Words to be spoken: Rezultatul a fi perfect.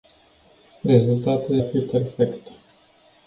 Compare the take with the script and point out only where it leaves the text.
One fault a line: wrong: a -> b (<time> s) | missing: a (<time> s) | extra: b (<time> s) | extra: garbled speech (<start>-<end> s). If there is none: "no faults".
no faults